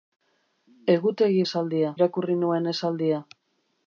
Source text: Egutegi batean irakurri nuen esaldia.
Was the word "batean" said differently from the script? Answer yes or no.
yes